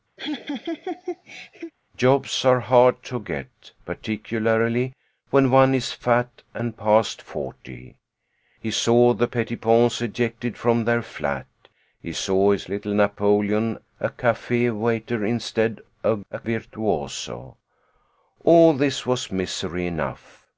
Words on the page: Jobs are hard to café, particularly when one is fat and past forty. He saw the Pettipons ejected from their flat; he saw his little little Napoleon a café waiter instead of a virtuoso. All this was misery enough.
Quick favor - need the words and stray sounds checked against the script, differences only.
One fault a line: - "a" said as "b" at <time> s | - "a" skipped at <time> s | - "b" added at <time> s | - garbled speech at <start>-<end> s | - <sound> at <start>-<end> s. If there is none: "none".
- laugh at 0.2-1.7 s
- "café" said as "get" at 3.2 s
- "little" skipped at 12.9 s